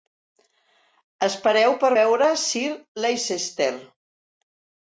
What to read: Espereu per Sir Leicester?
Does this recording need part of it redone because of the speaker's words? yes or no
yes